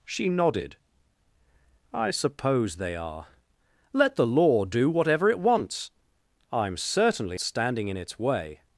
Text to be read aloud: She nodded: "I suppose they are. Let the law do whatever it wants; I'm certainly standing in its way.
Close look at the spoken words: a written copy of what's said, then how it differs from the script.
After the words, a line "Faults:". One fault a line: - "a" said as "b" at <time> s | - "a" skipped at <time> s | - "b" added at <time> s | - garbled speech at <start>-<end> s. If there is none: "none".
She nodded: "I suppose they are. Let the law do whatever it wants; I'm certainly standing in its way.
Faults:
none